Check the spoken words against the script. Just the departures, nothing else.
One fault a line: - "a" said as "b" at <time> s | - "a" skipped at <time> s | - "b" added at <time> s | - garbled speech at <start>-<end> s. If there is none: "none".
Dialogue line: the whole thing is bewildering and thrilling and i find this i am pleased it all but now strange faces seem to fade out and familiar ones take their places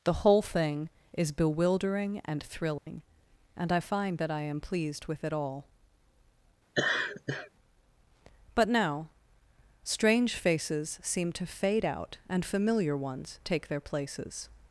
- "this" said as "that" at 4.2 s
- "with" added at 5.1 s